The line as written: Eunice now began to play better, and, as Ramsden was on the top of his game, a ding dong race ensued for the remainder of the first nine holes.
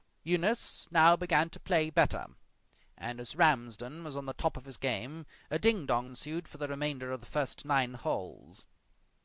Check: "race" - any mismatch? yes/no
yes